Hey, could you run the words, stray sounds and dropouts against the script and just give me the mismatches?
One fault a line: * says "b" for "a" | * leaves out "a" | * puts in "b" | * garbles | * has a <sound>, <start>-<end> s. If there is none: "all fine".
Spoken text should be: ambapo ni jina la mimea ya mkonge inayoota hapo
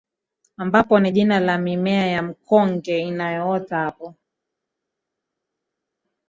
all fine